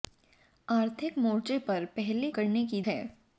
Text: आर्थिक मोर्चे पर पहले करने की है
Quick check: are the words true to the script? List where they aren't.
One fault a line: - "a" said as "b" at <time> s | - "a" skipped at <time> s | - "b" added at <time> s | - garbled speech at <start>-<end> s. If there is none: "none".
none